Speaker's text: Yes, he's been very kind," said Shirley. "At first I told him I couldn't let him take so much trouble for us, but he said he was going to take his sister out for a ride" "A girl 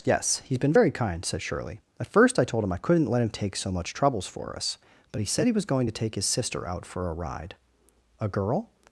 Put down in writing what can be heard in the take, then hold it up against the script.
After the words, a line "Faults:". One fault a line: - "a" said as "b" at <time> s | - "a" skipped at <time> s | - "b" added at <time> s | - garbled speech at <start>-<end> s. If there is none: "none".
Yes, he's been very kind," said Shirley. "At first I told him I couldn't let him take so much troubles for us, but he said he was going to take his sister out for a ride" "A girl
Faults:
- "trouble" said as "troubles" at 3.9 s